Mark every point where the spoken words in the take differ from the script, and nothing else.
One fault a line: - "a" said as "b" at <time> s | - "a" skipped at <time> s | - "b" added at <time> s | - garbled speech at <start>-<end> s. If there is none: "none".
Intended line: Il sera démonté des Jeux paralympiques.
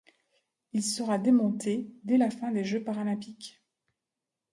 - "dès la fin" added at 2.0 s